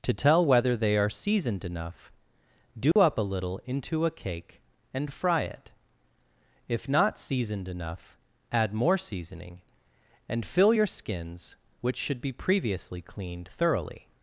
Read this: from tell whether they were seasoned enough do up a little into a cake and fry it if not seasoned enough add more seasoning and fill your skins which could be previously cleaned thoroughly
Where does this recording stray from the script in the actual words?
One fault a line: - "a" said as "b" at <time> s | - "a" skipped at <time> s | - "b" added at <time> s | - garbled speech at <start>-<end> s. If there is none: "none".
- "from" said as "to" at 0.0 s
- "were" said as "are" at 1.0 s
- "could" said as "should" at 12.0 s